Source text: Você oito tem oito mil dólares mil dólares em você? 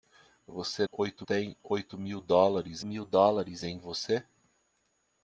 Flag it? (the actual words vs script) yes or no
no